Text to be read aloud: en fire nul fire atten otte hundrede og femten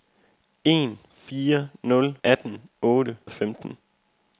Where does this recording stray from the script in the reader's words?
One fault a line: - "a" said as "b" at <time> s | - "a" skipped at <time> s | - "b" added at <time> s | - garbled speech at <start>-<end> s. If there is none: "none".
- "fire" skipped at 2.2 s
- "hundrede" skipped at 3.2 s